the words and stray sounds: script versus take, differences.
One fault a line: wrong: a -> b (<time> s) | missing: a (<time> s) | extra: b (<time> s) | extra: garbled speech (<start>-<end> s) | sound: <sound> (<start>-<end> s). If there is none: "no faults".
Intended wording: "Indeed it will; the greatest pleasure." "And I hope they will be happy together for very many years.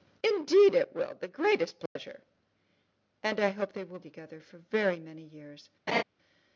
sound: dropout (1.9-2.0 s)
missing: be happy (4.0 s)
sound: laugh (5.9-6.0 s)